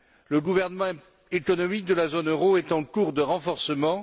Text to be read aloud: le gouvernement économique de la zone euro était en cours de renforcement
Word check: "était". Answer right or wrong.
wrong